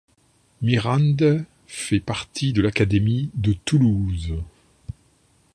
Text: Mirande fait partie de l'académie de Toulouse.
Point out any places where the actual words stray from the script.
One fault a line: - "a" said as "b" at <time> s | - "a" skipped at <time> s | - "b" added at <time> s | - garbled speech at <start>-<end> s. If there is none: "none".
none